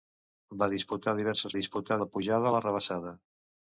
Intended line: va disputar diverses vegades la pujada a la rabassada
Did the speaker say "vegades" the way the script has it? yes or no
no